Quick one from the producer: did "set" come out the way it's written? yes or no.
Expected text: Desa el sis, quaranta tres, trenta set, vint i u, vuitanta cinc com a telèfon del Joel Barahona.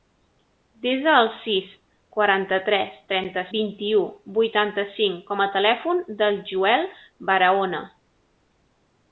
no